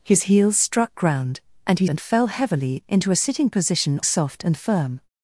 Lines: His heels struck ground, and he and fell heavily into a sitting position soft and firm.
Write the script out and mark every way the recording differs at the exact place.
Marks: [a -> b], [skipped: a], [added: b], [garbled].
His heels struck ground, and he and fell heavily into a sitting position soft and firm.